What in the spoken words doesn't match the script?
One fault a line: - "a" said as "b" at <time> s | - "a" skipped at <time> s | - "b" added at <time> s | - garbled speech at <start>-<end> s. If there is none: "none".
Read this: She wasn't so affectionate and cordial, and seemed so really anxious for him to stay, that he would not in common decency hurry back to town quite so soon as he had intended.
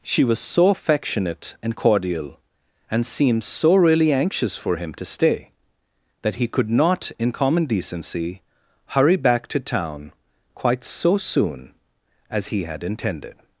- "wasn't" said as "was" at 0.2 s
- "would" said as "could" at 6.5 s